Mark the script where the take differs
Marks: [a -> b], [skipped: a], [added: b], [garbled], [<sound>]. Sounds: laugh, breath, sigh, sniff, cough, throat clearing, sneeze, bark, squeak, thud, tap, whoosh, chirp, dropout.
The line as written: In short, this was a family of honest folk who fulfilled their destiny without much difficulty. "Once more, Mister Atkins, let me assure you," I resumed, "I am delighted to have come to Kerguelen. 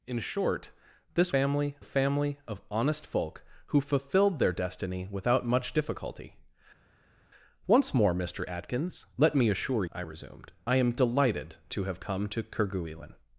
In short, this [was -> family] a family of honest folk who fulfilled their destiny without much difficulty. "Once more, Mister Atkins, let me assure [skipped: you,"] I resumed, "I am delighted to have come to Kerguelen.